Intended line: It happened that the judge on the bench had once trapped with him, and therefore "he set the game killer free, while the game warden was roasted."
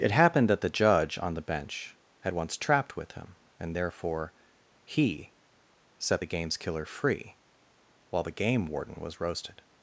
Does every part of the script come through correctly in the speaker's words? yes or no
no